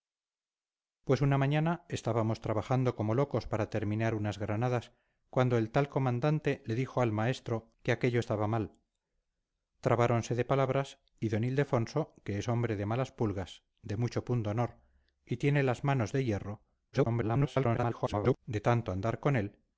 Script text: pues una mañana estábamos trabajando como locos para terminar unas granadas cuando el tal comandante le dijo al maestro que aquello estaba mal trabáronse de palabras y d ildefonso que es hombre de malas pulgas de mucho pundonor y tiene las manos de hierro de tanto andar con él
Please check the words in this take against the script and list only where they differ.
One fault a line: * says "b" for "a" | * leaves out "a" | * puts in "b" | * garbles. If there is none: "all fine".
* garbles